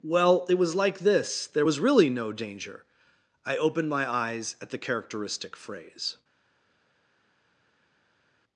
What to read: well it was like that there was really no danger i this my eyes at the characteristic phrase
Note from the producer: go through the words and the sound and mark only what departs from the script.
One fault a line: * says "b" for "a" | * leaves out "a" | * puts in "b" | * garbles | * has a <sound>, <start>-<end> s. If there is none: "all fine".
* says "this" for "that"
* says "opened" for "this"